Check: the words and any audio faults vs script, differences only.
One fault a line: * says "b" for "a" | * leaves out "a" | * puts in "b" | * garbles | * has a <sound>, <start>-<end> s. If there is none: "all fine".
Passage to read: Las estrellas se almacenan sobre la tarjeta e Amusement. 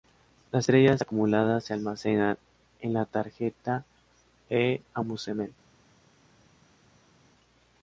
* puts in "acumuladas"
* says "en" for "sobre"